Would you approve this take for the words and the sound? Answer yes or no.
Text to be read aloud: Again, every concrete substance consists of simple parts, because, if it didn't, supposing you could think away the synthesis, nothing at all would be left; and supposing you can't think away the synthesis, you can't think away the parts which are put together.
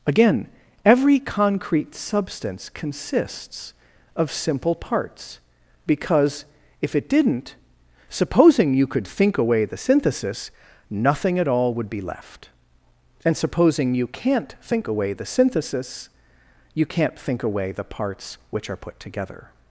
yes